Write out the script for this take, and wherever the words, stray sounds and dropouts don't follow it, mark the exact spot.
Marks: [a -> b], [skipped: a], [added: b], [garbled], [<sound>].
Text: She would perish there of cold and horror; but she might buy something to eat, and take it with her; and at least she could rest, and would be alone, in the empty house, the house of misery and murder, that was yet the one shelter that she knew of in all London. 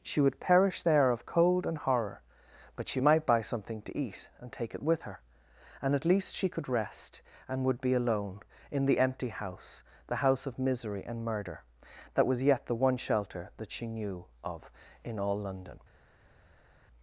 She would perish there of cold and horror; but she might buy something to eat, and take it with her; and at least she could rest, and would be alone, in the empty house, the house of misery and murder, that was yet the one shelter that she knew of in all London.